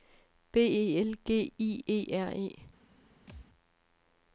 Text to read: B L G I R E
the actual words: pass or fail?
fail